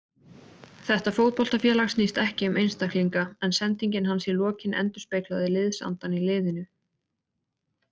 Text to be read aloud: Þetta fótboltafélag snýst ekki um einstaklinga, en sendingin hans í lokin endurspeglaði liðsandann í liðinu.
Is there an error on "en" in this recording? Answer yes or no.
no